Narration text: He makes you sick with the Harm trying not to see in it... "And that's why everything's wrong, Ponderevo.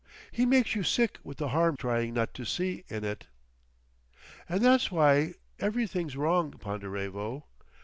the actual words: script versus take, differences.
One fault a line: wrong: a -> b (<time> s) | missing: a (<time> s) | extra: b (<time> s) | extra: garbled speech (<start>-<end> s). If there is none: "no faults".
no faults